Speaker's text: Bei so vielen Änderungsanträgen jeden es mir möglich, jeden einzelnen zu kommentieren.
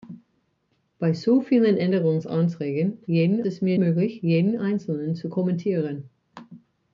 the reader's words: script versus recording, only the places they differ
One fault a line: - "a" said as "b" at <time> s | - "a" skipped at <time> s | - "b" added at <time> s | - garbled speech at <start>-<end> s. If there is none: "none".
none